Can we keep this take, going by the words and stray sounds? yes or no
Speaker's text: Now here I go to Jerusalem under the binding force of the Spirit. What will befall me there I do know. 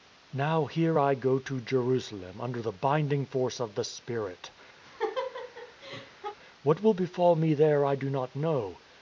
no